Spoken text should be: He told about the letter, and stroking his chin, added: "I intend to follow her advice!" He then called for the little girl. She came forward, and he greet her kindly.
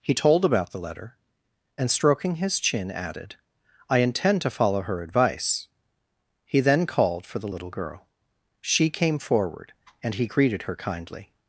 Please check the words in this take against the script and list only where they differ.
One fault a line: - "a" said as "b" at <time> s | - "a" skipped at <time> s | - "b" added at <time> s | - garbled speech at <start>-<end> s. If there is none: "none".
- "greet" said as "greeted" at 10.3 s